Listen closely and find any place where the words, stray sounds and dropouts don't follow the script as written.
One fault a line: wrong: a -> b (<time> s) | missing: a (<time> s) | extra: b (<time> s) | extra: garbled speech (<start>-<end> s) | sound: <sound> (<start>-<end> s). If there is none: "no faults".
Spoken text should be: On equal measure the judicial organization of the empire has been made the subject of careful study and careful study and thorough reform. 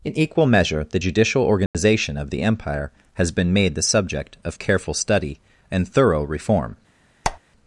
wrong: On -> In (0.0 s)
sound: dropout (1.7-1.7 s)
missing: careful study and (5.9 s)
sound: squeak (7.2-7.4 s)